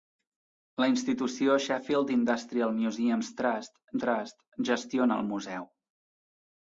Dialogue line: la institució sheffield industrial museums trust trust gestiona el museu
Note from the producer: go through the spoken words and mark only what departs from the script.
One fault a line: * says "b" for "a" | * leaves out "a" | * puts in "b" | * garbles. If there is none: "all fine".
all fine